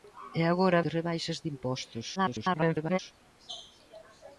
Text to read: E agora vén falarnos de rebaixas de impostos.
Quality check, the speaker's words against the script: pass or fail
fail